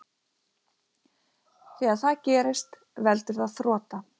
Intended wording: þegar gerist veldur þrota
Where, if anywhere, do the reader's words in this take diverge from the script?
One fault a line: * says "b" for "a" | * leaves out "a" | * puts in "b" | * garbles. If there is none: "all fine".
* puts in "það"
* puts in "það"